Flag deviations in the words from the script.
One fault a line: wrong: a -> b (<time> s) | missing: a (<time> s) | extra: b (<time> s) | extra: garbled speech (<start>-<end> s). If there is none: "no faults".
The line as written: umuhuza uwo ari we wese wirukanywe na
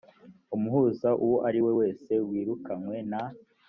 no faults